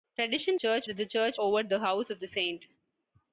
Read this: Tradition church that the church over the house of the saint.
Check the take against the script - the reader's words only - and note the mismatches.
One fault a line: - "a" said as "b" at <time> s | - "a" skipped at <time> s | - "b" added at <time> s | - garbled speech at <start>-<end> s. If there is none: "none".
none